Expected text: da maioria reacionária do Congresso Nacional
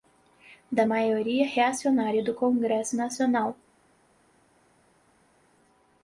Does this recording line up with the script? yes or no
yes